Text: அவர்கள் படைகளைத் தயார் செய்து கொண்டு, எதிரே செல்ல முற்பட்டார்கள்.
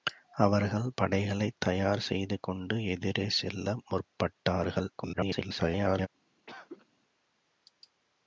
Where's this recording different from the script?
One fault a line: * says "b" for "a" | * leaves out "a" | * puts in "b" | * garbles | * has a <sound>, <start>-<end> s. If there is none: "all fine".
* garbles
* has a cough, 6.5-6.9 s